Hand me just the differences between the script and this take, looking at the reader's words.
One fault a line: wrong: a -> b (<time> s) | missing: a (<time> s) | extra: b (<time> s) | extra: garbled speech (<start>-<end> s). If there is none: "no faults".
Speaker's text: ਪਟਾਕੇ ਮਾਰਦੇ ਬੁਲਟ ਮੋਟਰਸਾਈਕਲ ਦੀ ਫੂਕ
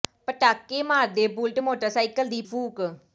no faults